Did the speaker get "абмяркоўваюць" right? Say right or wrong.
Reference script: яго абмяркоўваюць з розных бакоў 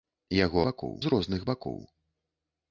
wrong